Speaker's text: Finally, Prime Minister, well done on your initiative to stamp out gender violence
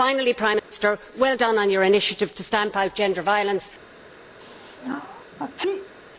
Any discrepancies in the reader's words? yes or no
no